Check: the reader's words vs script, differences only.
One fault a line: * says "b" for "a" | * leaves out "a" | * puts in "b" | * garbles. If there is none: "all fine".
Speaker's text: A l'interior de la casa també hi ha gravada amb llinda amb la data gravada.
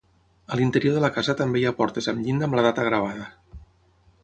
* says "portes" for "gravada"